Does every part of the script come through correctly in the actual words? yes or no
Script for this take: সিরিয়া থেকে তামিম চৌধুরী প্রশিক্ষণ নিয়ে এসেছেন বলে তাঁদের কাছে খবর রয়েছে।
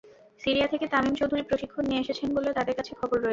yes